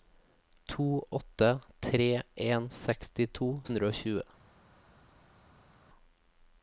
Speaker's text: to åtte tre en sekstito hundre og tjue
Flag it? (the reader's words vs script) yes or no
no